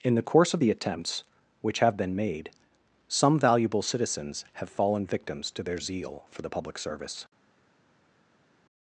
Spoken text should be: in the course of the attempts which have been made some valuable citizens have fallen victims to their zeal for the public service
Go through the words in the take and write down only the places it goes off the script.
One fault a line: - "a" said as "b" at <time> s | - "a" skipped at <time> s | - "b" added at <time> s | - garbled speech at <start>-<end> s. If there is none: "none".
none